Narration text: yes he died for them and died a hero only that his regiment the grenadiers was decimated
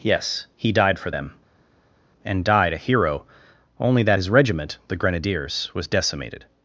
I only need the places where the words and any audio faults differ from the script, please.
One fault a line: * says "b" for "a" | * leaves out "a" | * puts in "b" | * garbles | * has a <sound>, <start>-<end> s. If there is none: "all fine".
all fine